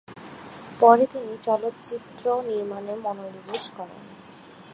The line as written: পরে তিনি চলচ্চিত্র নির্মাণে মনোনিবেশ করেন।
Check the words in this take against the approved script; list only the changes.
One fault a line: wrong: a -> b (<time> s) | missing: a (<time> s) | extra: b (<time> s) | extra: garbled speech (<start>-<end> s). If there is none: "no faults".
no faults